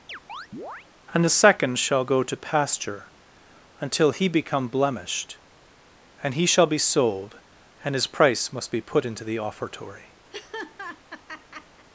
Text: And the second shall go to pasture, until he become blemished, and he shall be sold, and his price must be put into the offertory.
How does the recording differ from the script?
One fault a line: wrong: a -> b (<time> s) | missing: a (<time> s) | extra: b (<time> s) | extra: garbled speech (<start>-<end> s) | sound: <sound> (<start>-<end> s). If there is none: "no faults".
sound: chirp (0.1-0.9 s)
sound: laugh (10.3-11.9 s)